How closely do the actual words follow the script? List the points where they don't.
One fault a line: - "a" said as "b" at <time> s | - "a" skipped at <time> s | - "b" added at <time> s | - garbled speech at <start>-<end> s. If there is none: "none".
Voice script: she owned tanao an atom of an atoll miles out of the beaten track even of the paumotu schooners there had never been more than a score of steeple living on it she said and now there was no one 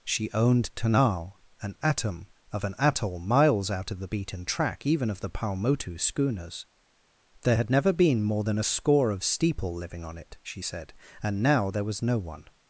none